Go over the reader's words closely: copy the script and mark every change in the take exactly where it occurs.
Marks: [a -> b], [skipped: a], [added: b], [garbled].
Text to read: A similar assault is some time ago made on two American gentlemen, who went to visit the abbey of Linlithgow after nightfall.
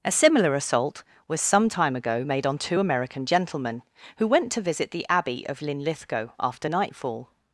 A similar assault [is -> was] some time ago made on two American gentlemen, who went to visit the abbey of Linlithgow after nightfall.